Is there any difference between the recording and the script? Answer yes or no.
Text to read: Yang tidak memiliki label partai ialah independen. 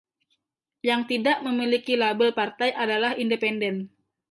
yes